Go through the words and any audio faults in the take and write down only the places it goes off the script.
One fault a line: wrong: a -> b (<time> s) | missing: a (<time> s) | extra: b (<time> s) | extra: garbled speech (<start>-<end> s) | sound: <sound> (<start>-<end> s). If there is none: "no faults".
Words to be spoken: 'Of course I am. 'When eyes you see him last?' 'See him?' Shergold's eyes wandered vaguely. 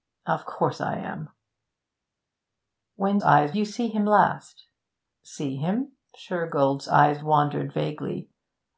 no faults